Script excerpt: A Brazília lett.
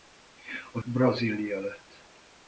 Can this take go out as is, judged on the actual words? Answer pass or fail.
pass